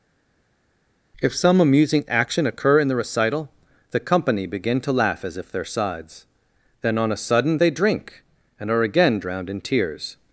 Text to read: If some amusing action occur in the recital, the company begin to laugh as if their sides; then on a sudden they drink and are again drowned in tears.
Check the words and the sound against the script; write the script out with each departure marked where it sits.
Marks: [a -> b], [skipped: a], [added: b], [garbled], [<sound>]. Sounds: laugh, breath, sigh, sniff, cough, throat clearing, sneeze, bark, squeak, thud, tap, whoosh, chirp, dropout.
If some amusing action occur in the recital, the company begin to laugh as if their sides; then on a sudden they drink and are again drowned in tears.